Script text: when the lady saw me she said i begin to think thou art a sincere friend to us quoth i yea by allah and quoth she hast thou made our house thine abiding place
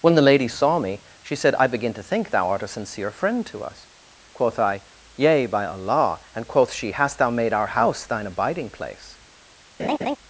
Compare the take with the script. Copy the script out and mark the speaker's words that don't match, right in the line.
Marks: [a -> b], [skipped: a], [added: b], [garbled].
when the lady saw me she said i begin to think thou art a sincere friend to us quoth i yea by allah and quoth she hast thou made our house thine abiding place